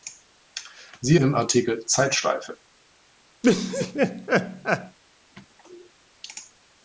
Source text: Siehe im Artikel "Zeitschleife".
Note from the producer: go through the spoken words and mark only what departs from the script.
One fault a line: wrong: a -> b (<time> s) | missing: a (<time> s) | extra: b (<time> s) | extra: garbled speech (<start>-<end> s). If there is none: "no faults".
no faults